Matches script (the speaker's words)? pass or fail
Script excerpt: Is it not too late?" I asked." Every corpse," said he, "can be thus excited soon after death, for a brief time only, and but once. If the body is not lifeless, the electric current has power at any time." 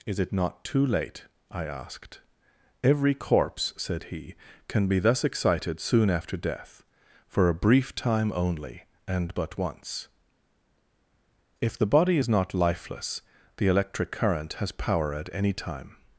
pass